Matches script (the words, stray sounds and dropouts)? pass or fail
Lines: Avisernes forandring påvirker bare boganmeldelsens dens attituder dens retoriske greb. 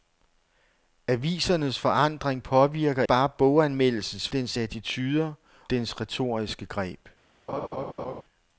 fail